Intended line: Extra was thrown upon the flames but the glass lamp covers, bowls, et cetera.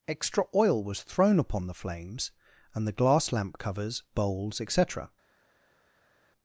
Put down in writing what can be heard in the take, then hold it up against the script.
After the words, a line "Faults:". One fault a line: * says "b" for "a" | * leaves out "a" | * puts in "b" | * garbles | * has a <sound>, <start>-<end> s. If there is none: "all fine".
Extra oil was thrown upon the flames and the glass lamp covers, bowls, et cetera.
Faults:
* puts in "oil"
* says "and" for "but"